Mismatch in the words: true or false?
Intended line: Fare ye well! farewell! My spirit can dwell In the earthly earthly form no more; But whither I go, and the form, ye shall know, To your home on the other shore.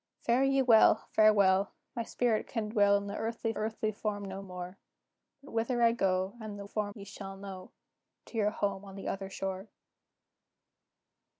false